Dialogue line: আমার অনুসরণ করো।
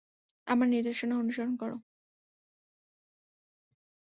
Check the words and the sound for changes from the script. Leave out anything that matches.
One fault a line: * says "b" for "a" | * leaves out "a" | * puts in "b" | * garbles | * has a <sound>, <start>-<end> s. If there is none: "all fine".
* puts in "নির্দেশনা"